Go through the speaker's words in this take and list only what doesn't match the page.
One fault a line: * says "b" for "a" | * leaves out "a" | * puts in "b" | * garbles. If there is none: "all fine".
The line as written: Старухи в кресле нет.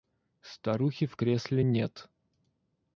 all fine